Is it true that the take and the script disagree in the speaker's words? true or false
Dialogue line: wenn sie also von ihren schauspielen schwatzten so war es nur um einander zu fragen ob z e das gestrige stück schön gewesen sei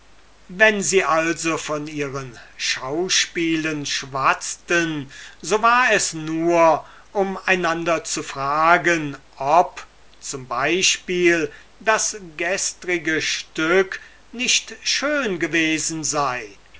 true